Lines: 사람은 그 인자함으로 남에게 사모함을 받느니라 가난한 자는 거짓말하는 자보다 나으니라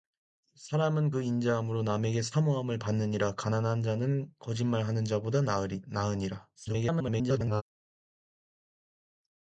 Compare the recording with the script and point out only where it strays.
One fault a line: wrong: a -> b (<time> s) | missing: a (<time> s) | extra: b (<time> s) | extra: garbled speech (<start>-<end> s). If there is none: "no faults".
extra: garbled speech (6.6-7.6 s)